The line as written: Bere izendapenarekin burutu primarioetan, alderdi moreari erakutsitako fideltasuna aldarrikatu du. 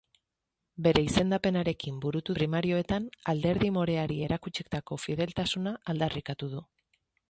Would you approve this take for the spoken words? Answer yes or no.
yes